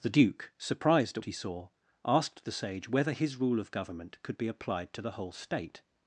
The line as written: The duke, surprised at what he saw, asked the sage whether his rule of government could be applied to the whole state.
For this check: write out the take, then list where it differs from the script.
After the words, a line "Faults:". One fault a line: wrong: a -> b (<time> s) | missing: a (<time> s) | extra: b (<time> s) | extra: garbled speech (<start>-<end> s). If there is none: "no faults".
The duke, surprised at he saw, asked the sage whether his rule of government could be applied to the whole state.
Faults:
missing: what (1.2 s)